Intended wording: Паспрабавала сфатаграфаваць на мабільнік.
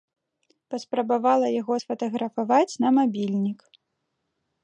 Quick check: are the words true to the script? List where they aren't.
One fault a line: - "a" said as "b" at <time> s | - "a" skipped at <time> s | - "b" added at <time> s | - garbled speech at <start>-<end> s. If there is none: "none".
- "яго" added at 1.6 s